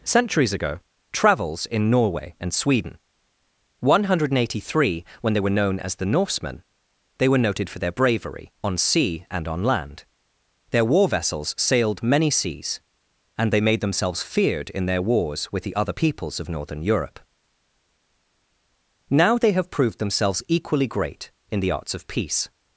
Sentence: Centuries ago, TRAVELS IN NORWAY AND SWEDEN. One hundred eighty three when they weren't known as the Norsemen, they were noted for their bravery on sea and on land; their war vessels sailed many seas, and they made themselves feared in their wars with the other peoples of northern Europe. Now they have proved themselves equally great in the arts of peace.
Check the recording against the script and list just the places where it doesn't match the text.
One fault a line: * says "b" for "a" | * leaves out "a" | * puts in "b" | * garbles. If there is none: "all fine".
* says "were" for "weren't"